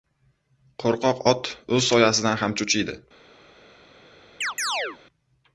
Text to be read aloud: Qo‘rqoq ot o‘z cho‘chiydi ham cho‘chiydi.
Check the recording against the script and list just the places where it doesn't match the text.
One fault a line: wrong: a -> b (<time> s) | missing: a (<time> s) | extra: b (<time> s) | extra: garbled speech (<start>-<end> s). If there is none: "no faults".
wrong: cho‘chiydi -> soyasidan (1.9 s)